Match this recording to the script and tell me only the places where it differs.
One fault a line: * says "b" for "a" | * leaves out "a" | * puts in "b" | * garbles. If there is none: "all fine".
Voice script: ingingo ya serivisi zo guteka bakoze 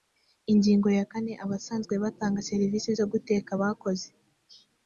* puts in "kane abasanzwe batanga"